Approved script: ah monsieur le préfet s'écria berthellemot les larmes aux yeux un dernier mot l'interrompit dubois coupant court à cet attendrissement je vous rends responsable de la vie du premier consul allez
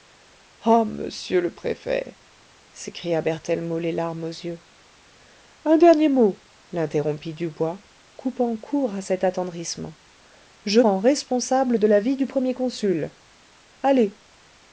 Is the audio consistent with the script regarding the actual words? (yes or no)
no